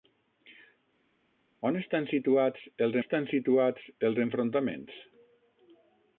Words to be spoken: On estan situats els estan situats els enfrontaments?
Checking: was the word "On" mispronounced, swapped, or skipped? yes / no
no